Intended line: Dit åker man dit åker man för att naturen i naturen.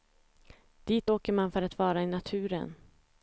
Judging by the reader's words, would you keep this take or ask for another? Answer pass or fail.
fail